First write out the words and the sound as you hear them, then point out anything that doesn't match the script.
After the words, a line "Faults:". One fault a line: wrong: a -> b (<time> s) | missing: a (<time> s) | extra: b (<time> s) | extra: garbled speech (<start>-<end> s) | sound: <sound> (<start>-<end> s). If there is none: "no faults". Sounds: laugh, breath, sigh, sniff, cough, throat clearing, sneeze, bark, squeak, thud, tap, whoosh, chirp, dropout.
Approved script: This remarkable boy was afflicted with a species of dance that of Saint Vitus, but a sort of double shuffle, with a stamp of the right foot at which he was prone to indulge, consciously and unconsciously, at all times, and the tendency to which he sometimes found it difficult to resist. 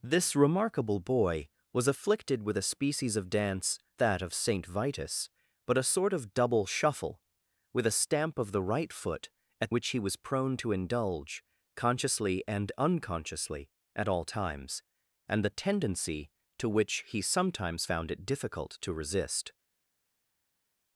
This remarkable boy was afflicted with a species of dance that of Saint Vitus, but a sort of double shuffle, with a stamp of the right foot at which he was prone to indulge, consciously and unconsciously, at all times, and the tendency to which he sometimes found it difficult to resist.
Faults:
no faults